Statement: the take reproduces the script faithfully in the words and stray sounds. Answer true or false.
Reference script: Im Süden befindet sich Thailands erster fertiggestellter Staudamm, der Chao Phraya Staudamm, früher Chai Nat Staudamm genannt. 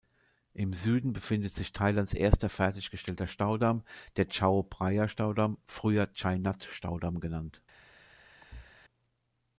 false